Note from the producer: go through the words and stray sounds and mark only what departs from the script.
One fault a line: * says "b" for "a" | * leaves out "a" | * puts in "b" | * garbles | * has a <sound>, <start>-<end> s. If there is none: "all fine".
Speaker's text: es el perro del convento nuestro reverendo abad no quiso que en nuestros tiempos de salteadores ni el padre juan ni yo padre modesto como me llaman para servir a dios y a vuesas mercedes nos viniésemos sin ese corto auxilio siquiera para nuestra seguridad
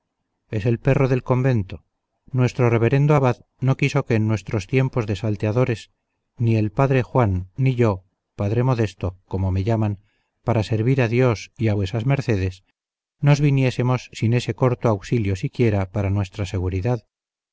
all fine